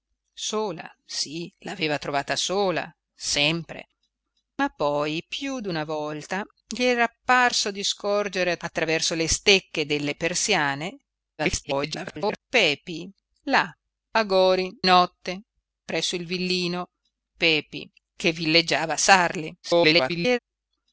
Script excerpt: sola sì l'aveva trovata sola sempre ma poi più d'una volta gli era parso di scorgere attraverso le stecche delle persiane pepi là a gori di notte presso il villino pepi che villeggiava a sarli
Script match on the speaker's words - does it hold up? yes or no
no